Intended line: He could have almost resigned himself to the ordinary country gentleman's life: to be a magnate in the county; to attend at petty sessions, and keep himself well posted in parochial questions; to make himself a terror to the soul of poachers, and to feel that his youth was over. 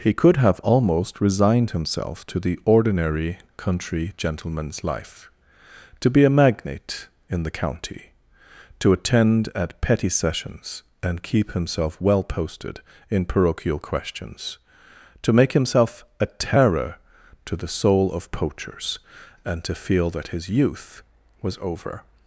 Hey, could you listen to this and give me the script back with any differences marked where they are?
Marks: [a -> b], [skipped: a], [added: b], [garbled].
He could have almost resigned himself to the ordinary country gentleman's life: to be a magnate in the county; to attend at petty sessions, and keep himself well posted in parochial questions; to make himself a terror to the soul of poachers, and to feel that his youth was over.